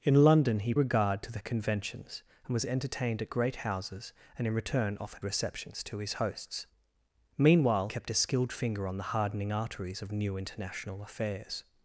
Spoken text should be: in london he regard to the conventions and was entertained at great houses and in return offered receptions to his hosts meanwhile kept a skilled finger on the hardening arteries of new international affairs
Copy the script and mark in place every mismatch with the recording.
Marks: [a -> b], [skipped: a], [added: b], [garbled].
in london he regard to the conventions and was entertained at great houses and in return offered receptions to his hosts meanwhile kept a skilled finger on the hardening arteries of new international affairs